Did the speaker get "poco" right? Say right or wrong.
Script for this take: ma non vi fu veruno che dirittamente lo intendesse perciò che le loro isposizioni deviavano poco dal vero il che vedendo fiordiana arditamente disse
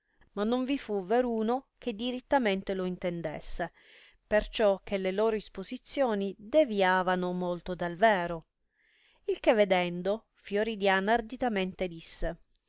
wrong